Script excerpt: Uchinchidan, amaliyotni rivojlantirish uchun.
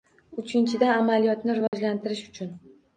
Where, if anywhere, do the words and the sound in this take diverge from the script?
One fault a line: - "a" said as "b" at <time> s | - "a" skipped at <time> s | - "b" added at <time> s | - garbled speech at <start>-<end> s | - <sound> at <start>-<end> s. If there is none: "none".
- dropout at 1.7-1.7 s